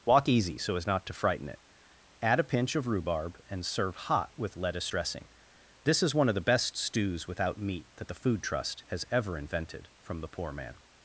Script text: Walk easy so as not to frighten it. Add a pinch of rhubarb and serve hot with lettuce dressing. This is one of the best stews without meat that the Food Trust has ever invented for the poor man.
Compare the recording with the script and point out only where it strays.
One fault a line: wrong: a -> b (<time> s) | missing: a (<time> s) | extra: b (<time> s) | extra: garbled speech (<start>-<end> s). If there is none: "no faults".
wrong: for -> from (10.0 s)